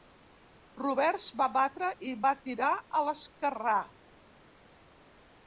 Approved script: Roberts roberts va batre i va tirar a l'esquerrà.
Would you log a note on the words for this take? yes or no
yes